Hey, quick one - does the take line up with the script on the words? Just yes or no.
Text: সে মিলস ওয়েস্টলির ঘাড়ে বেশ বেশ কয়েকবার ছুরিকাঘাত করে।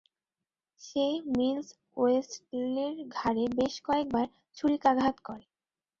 no